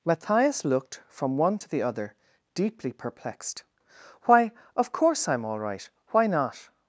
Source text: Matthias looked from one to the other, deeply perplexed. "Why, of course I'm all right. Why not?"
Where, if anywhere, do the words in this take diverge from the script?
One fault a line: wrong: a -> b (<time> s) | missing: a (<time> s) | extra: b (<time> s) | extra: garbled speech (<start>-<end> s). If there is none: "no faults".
no faults